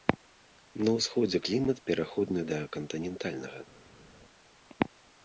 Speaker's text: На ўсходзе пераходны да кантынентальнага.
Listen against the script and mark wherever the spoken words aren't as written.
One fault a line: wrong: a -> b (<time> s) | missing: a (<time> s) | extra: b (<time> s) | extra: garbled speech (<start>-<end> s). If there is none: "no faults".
extra: клімат (1.5 s)